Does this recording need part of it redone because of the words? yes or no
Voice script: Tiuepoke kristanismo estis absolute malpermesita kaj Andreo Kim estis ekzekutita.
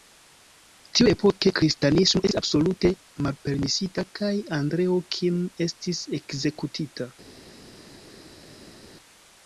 no